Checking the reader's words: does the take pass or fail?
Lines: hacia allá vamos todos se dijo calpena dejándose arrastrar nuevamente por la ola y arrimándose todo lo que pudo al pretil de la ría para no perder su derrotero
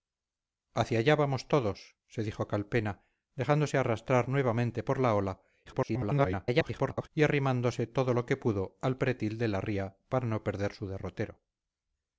fail